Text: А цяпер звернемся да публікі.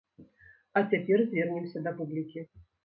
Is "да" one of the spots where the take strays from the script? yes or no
no